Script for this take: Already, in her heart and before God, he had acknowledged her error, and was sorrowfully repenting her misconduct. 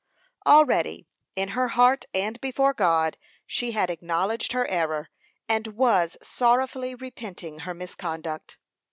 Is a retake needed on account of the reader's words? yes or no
yes